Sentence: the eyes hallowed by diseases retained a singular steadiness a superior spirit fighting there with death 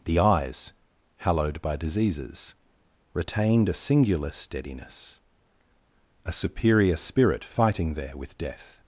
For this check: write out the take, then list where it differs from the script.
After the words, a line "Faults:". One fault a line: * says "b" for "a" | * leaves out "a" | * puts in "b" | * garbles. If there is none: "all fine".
the eyes hallowed by diseases retained a singular steadiness a superior spirit fighting there with death
Faults:
all fine